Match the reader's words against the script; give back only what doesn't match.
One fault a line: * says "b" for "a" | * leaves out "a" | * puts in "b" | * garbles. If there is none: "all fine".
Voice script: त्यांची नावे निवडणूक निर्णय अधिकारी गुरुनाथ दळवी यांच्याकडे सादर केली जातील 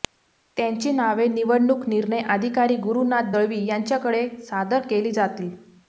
all fine